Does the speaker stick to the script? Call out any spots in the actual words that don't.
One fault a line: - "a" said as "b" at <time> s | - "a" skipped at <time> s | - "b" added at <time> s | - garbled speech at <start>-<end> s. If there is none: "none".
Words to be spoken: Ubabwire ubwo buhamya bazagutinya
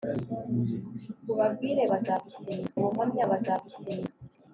- "ubwo" said as "bazagutinya" at 1.9 s